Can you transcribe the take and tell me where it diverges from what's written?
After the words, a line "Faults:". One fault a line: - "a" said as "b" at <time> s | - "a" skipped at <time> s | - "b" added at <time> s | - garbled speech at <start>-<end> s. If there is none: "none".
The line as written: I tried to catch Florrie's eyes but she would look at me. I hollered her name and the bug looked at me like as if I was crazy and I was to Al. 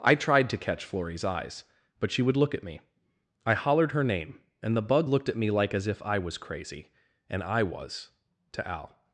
I tried to catch Florrie's eyes but she would look at me. I hollered her name and the bug looked at me like as if I was crazy and I was to Al.
Faults:
none